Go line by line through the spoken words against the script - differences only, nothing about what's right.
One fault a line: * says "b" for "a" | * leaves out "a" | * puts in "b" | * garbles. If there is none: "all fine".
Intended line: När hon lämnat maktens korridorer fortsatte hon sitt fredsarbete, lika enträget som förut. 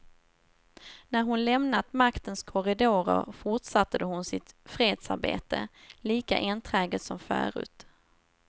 all fine